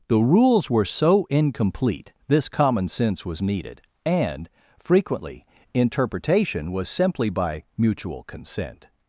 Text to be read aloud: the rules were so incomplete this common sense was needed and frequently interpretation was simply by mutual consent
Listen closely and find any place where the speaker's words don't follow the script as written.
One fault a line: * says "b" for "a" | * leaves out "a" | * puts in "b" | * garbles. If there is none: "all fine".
all fine